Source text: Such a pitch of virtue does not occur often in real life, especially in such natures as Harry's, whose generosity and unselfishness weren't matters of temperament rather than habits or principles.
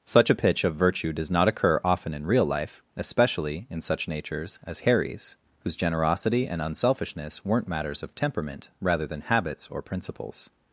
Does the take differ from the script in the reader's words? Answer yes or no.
no